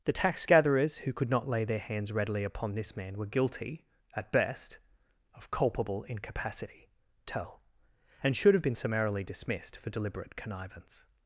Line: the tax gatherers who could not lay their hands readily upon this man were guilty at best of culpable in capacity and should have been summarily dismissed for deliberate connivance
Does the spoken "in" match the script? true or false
false